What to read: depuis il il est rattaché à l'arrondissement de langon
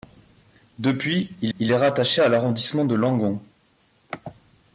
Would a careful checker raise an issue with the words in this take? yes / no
no